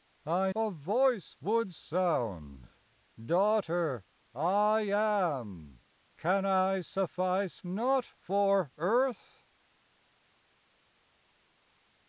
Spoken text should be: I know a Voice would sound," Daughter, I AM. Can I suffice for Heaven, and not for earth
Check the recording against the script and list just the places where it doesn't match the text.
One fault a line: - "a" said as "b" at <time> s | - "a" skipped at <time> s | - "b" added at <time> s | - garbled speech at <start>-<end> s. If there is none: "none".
- "know" skipped at 0.5 s
- "for Heaven and" skipped at 7.6 s